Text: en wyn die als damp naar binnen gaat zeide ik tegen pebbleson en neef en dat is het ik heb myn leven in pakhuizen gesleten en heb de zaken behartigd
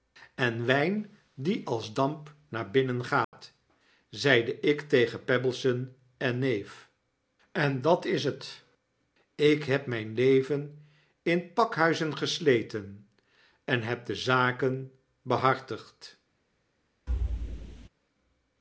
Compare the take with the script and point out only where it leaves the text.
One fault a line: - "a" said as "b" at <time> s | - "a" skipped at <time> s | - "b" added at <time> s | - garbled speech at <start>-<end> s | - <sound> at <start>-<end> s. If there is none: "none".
- dropout at 3.2-3.3 s
- thud at 17.1-17.9 s